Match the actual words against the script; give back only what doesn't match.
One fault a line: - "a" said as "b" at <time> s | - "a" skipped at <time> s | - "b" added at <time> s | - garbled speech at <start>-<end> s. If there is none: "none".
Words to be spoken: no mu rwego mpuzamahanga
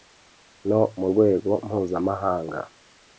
none